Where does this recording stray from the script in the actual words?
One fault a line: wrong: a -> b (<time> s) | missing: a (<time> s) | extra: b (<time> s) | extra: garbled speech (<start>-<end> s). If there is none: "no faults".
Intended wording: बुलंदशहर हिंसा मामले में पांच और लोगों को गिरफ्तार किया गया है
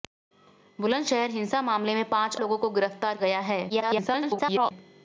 missing: और (2.4 s)
missing: किया (3.2 s)
extra: garbled speech (3.7-4.7 s)